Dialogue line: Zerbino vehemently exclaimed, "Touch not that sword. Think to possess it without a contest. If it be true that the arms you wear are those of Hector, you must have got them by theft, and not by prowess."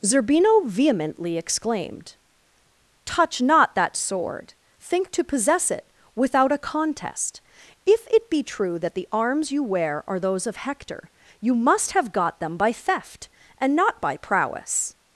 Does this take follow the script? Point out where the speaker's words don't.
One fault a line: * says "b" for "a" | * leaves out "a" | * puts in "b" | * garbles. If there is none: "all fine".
all fine